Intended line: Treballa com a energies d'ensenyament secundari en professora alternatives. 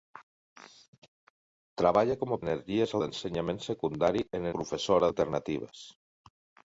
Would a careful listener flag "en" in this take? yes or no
no